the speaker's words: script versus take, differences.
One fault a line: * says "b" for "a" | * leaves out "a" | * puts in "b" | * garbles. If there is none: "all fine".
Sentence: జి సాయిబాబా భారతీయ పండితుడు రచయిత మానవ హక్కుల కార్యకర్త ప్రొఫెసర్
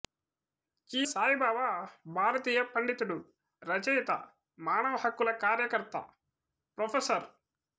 all fine